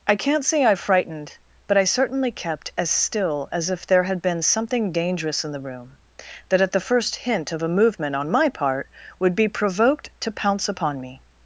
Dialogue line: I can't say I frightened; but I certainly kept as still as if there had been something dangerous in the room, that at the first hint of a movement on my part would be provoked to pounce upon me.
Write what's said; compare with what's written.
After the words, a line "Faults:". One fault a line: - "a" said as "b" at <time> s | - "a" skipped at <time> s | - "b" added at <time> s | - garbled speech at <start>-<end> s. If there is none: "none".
I can't say I frightened; but I certainly kept as still as if there had been something dangerous in the room, that at the first hint of a movement on my part would be provoked to pounce upon me.
Faults:
none